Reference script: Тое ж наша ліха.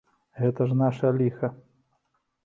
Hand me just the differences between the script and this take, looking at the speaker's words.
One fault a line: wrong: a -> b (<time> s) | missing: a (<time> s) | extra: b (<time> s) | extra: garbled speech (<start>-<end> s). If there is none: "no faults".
wrong: Тое -> Гэта (0.4 s)